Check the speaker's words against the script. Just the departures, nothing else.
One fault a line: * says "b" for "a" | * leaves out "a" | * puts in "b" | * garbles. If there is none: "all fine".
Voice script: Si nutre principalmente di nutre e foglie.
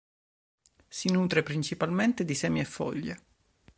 * says "semi" for "nutre"